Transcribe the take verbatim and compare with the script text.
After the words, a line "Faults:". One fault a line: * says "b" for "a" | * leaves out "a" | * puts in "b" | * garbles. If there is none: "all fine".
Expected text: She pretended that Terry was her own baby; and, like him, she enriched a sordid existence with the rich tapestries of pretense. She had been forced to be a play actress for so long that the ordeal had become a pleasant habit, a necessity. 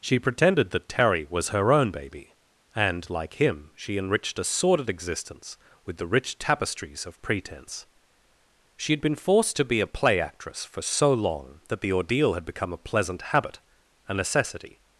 She pretended that Terry was her own baby; and, like him, she enriched a sordid existence with the rich tapestries of pretense. She had been forced to be a play actress for so long that the ordeal had become a pleasant habit, a necessity.
Faults:
all fine